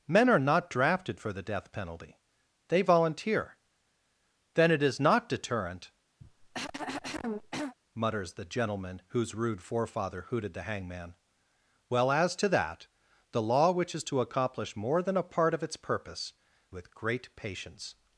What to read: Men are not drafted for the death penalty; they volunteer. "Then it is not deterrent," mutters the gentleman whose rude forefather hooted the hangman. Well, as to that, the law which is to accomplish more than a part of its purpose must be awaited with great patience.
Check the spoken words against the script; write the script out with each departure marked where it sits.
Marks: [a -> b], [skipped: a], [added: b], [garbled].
Men are not drafted for the death penalty; they volunteer. "Then it is not deterrent," mutters the gentleman whose rude forefather hooted the hangman. Well, as to that, the law which is to accomplish more than a part of its purpose [skipped: must be awaited] with great patience.